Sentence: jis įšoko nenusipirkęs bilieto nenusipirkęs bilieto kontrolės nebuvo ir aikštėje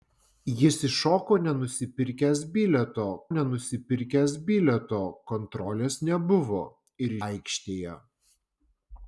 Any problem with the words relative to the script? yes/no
no